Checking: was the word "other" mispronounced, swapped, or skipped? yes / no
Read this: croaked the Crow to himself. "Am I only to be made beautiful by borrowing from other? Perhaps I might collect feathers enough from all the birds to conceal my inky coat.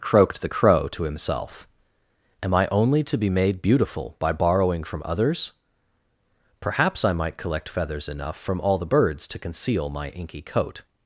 yes